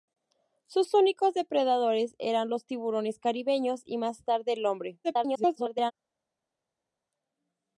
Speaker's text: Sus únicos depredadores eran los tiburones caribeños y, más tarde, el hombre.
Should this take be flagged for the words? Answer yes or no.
yes